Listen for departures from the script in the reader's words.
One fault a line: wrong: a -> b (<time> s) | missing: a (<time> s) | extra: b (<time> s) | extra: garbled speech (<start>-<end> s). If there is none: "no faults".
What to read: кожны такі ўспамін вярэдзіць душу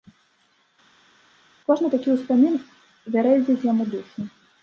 extra: яму (3.7 s)